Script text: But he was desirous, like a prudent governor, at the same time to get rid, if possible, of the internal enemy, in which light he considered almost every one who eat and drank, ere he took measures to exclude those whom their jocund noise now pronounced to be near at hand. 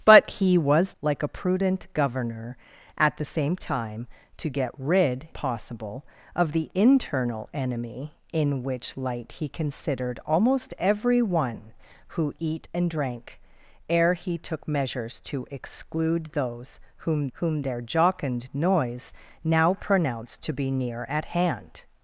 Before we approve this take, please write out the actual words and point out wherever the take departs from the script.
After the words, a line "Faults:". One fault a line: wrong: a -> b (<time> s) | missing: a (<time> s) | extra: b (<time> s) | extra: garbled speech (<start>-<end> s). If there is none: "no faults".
But he was like a prudent governor, at the same time to get rid, possible, of the internal enemy, in which light he considered almost every one who eat and drank, ere he took measures to exclude those whom whom their jocund noise now pronounced to be near at hand.
Faults:
missing: desirous (0.9 s)
missing: if (5.3 s)
extra: whom (17.3 s)